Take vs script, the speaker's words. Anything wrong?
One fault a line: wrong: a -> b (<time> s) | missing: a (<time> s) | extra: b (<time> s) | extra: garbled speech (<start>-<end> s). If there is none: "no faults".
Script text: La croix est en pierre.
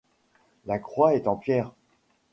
no faults